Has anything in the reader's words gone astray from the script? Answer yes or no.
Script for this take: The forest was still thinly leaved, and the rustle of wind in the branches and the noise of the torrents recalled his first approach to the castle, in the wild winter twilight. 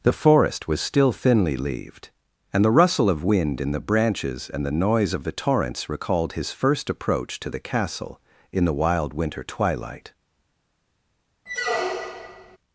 no